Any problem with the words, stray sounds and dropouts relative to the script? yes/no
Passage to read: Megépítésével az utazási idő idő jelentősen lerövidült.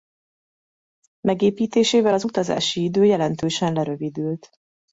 yes